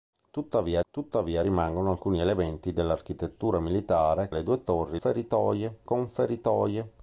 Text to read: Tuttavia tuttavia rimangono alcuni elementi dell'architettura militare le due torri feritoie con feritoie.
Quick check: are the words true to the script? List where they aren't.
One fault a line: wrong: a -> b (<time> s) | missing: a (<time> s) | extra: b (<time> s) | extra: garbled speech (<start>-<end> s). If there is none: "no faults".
no faults